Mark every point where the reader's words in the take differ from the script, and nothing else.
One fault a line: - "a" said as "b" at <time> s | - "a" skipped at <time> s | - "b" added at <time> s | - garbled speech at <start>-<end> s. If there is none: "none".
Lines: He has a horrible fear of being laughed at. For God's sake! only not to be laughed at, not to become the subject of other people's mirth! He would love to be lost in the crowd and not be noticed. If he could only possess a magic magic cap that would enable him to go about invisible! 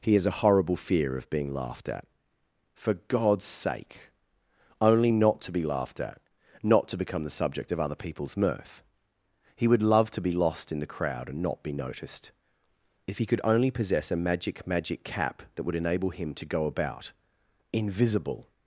none